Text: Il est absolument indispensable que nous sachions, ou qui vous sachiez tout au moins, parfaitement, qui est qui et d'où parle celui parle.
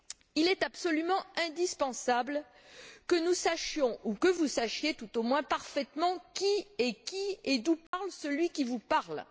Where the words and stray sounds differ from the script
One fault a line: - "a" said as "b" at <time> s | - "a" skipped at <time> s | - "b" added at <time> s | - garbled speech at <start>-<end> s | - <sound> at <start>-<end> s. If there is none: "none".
- "qui" said as "que" at 4.2 s
- dropout at 7.9-7.9 s
- "qui vous" added at 8.5 s